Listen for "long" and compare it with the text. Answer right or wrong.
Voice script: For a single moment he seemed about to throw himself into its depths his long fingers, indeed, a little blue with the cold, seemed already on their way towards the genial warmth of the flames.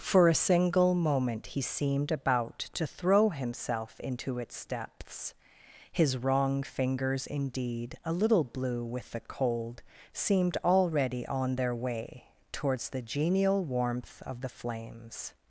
wrong